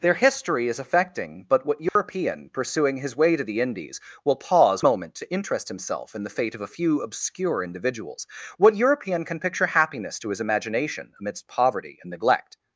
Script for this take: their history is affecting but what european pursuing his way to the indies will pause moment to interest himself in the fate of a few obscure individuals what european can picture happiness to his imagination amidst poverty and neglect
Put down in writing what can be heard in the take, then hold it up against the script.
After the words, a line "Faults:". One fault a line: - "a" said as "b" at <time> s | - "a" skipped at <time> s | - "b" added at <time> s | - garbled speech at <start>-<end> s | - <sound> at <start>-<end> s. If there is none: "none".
their history is affecting but what european pursuing his way to the indies will pause moment to interest himself in the fate of a few obscure individuals what european can picture happiness to his imagination amidst poverty and neglect
Faults:
- dropout at 1.9-2.0 s